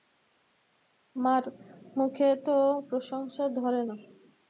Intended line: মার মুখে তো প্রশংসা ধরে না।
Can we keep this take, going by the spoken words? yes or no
yes